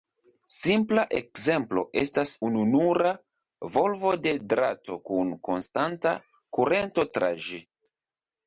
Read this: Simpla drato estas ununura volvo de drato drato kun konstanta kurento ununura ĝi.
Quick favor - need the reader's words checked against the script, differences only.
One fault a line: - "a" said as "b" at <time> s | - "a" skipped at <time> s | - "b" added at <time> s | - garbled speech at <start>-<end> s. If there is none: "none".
- "drato" said as "ekzemplo" at 1.2 s
- "drato" skipped at 5.0 s
- "ununura" said as "tra" at 7.2 s